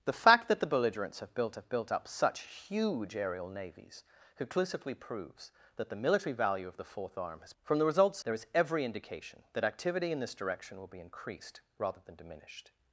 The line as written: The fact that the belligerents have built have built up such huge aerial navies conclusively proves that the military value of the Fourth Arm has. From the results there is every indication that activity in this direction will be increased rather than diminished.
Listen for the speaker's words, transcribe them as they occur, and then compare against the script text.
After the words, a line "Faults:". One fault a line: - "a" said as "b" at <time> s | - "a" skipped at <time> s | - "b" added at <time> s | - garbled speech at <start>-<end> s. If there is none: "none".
The fact that the belligerents have built have built up such huge aerial navies conclusively proves that the military value of the Fourth Arm has. From the results there is every indication that activity in this direction will be increased rather than diminished.
Faults:
none